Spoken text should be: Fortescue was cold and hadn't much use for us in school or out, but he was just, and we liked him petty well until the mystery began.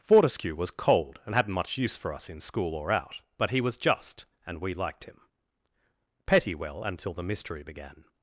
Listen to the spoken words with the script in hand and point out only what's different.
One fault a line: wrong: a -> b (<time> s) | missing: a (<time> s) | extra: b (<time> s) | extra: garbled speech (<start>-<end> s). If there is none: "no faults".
no faults